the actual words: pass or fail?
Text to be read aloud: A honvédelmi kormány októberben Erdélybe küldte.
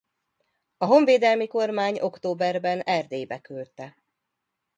pass